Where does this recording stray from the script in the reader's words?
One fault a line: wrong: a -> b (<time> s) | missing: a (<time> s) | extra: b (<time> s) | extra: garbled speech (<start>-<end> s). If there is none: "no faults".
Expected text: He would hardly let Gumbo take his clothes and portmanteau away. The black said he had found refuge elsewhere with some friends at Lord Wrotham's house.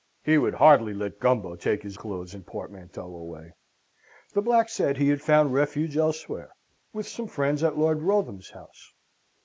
no faults